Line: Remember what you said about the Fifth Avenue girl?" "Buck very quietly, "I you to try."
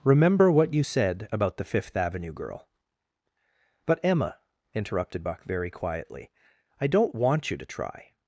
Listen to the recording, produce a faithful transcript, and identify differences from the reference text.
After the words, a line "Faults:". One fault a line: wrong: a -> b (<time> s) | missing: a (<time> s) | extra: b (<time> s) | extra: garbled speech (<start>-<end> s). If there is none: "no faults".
Remember what you said about the Fifth Avenue girl?" "But, Emma," interrupted Buck very quietly, "I don't want you to try."
Faults:
extra: But Emma interrupted (3.8 s)
extra: don't want (6.9 s)